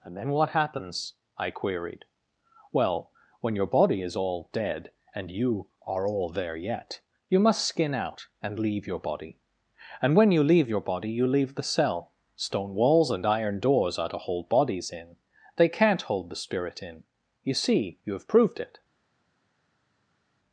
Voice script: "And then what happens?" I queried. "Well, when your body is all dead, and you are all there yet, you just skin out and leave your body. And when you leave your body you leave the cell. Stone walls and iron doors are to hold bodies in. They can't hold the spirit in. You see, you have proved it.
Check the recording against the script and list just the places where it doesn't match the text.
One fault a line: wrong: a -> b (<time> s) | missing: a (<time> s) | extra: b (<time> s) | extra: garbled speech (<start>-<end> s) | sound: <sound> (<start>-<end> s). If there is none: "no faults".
wrong: just -> must (7.4 s)